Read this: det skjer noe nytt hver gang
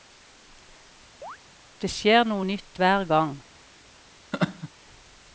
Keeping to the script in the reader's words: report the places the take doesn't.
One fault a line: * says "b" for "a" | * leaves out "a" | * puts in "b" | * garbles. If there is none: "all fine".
all fine